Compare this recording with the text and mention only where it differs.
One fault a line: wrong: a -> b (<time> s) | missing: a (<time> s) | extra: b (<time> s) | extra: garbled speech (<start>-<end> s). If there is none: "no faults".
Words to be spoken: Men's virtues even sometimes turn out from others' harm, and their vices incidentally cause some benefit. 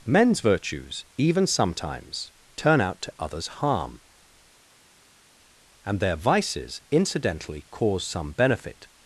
wrong: from -> to (3.0 s)